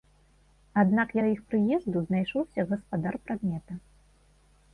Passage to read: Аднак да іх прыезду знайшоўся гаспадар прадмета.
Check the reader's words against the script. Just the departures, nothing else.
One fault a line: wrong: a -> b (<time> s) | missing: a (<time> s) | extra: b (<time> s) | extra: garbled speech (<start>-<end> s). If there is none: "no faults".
no faults